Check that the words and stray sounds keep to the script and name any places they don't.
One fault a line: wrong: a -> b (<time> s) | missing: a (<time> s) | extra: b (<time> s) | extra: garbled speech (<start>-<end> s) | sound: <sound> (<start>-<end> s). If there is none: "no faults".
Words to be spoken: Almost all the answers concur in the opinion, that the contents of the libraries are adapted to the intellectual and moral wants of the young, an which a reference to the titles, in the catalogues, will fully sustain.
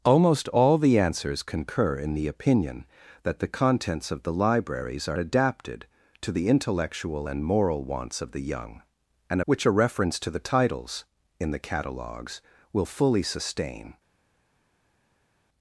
no faults